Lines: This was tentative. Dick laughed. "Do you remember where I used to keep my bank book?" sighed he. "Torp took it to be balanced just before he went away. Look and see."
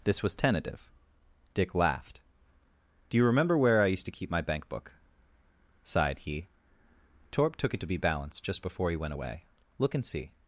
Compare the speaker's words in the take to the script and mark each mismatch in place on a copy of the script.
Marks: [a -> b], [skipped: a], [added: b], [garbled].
This was tentative. Dick laughed. "Do you remember where I used to keep my bank book?" sighed he. "Torp took it to be balanced just before he went away. Look and see."